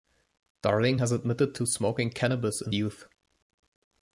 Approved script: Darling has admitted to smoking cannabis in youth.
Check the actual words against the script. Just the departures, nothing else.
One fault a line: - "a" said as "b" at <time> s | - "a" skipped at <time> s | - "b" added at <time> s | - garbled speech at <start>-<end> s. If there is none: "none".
none